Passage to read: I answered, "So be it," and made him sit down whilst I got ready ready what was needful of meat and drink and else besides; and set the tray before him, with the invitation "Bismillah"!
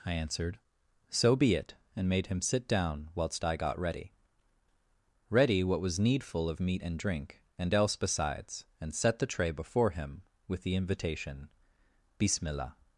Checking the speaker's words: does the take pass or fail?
pass